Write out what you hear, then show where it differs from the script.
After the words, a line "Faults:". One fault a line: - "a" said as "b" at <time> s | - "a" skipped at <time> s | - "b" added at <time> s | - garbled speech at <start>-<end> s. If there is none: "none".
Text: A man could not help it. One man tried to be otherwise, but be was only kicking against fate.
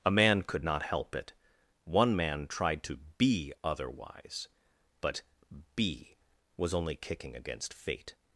A man could not help it. One man tried to be otherwise, but be was only kicking against fate.
Faults:
none